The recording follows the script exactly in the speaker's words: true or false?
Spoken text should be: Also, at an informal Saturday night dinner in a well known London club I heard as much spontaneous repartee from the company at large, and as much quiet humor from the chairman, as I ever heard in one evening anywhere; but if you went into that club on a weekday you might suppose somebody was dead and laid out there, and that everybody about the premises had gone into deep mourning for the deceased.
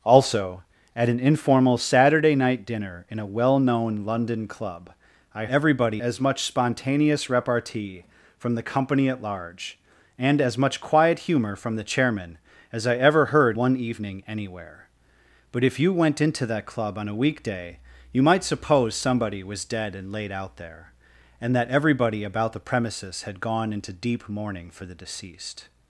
false